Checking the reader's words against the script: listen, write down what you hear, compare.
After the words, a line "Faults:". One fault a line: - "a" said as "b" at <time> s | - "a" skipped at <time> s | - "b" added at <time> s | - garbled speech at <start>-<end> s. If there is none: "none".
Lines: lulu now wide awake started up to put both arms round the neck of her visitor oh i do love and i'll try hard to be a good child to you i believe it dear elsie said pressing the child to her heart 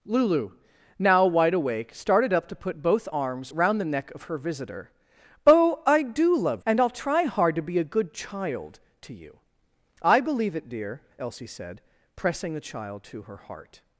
lulu now wide awake started up to put both arms round the neck of her visitor oh i do love and i'll try hard to be a good child to you i believe it dear elsie said pressing the child to her heart
Faults:
none